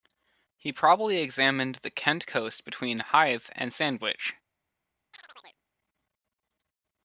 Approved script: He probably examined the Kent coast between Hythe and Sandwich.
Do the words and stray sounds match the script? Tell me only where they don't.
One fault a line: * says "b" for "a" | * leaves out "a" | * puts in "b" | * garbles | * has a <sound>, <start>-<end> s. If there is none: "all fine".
* has a chirp, 5.1-5.6 s